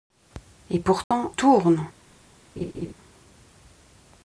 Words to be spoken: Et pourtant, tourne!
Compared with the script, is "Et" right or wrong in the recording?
right